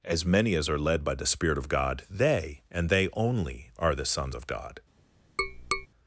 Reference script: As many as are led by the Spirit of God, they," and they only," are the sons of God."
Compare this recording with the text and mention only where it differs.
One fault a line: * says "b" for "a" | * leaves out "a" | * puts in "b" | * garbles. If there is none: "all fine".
all fine